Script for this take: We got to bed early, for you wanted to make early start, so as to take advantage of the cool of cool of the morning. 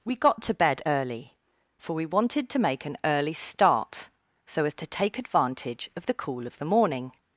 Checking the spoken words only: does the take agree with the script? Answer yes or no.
no